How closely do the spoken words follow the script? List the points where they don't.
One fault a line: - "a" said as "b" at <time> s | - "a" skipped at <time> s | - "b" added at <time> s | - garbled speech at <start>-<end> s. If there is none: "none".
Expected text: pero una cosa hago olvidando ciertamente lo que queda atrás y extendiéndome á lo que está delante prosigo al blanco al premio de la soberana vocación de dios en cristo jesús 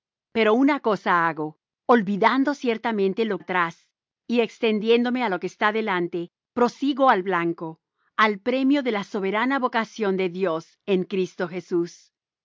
- "que queda" skipped at 3.4 s